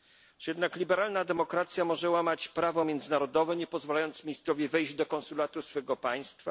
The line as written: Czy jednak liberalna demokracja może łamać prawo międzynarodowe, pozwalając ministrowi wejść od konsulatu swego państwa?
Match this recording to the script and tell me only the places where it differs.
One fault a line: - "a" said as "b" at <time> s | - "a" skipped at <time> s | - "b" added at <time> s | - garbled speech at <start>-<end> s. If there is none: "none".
- "nie" added at 3.5 s
- "od" said as "do" at 4.9 s